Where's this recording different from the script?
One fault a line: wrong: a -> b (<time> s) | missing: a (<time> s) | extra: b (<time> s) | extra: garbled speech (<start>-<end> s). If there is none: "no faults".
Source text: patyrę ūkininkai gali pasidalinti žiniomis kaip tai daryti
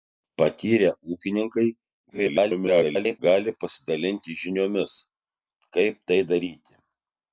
extra: garbled speech (2.1-3.2 s)